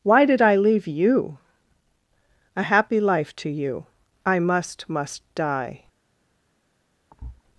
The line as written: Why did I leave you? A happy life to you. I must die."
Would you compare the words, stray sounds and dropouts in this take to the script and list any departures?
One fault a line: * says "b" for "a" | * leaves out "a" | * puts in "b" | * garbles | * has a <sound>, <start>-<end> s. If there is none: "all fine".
* puts in "must"
* has a thud, 7.1-7.4 s